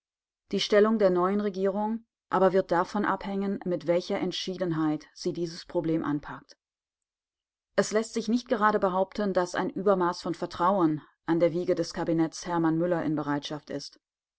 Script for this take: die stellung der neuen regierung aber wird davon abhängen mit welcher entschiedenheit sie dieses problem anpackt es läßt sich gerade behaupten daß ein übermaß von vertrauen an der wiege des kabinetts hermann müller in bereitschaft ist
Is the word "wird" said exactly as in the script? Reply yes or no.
yes